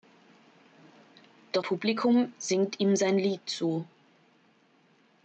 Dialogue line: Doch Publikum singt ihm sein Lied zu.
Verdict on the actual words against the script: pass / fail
pass